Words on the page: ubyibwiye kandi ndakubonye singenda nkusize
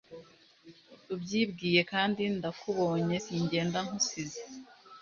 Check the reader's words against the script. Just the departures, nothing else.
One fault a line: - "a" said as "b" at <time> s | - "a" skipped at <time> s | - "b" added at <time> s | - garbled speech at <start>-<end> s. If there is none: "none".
none